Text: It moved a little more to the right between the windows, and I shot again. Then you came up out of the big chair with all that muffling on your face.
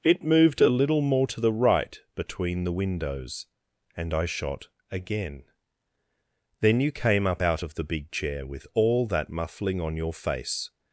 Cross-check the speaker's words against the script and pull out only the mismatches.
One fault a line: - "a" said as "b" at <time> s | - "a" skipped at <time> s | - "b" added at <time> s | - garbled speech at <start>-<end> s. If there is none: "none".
none